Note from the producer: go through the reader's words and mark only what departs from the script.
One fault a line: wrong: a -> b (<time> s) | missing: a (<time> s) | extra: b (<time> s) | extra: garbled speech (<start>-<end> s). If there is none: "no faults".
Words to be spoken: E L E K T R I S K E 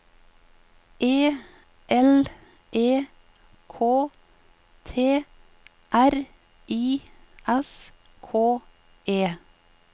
no faults